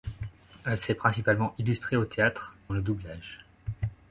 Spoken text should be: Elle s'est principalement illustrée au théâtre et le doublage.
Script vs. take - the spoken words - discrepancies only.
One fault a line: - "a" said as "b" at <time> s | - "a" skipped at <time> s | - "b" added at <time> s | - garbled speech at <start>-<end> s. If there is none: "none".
none